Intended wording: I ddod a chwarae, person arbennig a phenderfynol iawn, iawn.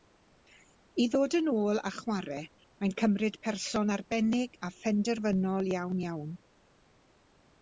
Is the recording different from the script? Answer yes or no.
yes